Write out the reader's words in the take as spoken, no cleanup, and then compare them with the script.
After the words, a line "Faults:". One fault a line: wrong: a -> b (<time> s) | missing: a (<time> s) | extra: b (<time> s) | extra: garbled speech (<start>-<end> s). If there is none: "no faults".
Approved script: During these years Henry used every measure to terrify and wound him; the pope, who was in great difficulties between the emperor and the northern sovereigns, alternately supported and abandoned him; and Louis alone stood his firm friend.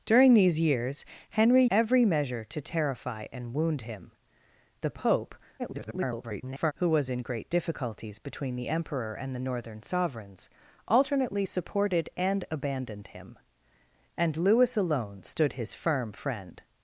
During these years Henry every measure to terrify and wound him; the pope, [garbled] who was in great difficulties between the emperor and the northern sovereigns, alternately supported and abandoned him; and Louis alone stood his firm friend.
Faults:
missing: used (1.6 s)
extra: garbled speech (5.6-6.7 s)